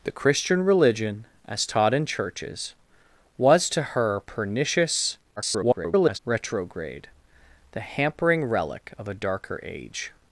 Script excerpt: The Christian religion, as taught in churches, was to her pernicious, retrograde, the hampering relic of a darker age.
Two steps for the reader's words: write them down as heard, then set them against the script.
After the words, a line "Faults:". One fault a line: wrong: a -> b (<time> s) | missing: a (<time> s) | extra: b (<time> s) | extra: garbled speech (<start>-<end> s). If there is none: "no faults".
The Christian religion, as taught in churches, was to her pernicious, [garbled] retrograde, the hampering relic of a darker age.
Faults:
extra: garbled speech (5.4-6.2 s)